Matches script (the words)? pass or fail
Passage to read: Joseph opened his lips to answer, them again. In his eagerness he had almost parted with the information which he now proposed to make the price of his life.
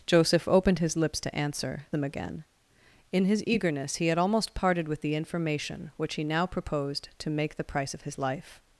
pass